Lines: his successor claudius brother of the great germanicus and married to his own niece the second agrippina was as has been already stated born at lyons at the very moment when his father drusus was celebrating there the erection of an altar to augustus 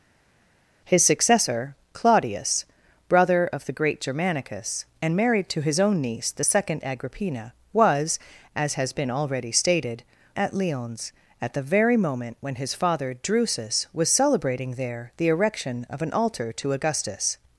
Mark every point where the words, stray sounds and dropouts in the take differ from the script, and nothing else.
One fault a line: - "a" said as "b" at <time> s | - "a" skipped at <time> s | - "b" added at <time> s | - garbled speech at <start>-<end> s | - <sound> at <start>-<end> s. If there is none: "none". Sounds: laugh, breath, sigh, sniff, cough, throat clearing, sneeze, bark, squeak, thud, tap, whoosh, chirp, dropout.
- "born" skipped at 10.0 s